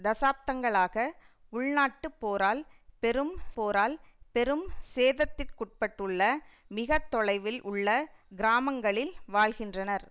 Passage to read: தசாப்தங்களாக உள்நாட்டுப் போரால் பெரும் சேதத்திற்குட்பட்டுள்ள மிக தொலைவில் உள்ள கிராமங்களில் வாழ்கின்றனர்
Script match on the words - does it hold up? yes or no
no